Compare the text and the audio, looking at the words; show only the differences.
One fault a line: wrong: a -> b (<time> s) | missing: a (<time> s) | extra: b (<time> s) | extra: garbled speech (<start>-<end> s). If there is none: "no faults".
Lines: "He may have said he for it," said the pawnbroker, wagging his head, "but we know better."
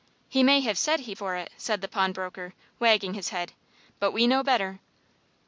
no faults